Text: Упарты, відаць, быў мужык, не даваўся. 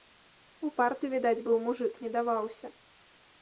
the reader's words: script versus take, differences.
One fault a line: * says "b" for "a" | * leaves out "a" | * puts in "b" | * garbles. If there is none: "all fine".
all fine